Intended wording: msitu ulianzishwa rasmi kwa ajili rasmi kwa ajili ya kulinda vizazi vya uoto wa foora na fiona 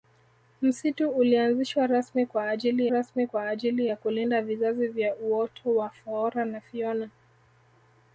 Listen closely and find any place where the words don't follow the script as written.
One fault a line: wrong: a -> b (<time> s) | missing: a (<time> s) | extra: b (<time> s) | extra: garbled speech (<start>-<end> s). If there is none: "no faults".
no faults